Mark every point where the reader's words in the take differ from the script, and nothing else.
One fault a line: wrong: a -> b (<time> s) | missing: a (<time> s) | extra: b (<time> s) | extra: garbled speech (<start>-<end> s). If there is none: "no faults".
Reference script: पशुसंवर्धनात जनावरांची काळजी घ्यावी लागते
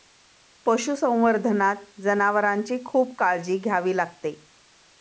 extra: खूप (2.9 s)